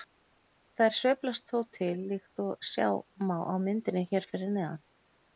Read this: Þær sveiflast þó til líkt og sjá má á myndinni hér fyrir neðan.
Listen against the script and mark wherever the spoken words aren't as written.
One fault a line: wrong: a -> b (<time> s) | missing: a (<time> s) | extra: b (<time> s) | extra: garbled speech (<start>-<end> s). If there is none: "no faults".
no faults